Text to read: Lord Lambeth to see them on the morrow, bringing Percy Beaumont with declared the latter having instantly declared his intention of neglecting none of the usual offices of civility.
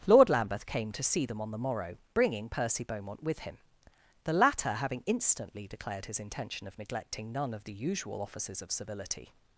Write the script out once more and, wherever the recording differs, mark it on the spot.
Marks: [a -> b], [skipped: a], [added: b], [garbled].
Lord Lambeth [added: came] to see them on the morrow, bringing Percy Beaumont with [declared -> him] the latter having instantly declared his intention of neglecting none of the usual offices of civility.